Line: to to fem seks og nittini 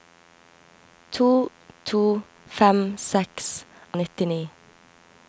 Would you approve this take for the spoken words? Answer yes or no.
yes